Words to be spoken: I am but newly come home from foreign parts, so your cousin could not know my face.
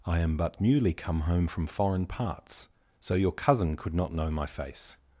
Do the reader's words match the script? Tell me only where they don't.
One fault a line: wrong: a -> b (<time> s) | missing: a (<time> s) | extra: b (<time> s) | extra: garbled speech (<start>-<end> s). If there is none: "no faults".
no faults